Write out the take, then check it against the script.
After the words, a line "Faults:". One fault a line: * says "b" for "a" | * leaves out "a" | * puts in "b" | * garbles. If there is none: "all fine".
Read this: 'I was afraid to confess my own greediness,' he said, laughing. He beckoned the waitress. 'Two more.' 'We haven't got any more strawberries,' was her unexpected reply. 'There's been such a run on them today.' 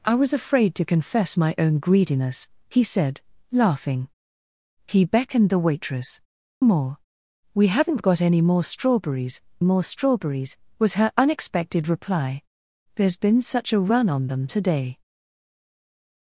'I was afraid to confess my own greediness,' he said, laughing. He beckoned the waitress. 'More.' 'We haven't got any more strawberries more strawberries,' was her unexpected reply. 'There's been such a run on them today.'
Faults:
* leaves out "Two"
* puts in "more strawberries"